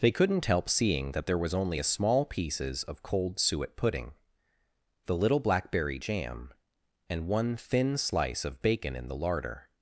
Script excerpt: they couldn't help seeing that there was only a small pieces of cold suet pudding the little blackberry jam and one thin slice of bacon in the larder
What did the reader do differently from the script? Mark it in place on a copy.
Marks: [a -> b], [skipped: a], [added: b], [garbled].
they couldn't help seeing that there was only a small pieces of cold suet pudding the little blackberry jam and one thin slice of bacon in the larder